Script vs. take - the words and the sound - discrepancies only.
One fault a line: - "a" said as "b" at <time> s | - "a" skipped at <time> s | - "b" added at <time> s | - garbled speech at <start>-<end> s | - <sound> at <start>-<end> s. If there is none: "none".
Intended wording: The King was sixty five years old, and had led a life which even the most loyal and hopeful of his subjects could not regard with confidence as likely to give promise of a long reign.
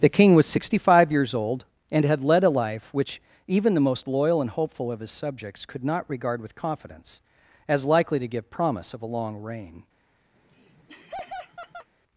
- laugh at 10.3-11.9 s